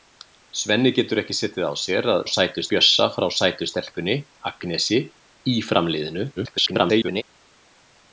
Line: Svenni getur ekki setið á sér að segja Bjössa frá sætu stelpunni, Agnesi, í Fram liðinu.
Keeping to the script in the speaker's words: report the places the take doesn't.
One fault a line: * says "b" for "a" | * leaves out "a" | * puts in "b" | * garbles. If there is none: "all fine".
* says "sætu" for "segja"
* garbles